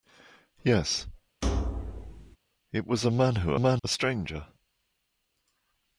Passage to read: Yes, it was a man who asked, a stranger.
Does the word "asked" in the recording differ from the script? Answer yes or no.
yes